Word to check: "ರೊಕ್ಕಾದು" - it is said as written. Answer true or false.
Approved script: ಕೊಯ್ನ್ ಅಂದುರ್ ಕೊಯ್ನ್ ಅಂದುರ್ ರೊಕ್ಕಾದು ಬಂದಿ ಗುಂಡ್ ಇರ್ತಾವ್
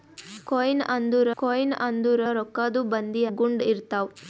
true